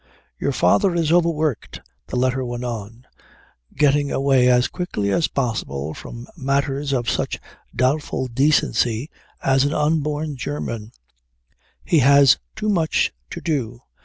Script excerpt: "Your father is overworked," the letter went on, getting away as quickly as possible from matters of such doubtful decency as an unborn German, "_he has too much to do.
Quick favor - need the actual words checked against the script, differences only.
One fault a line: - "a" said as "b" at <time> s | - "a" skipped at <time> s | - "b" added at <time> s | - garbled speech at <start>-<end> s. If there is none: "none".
none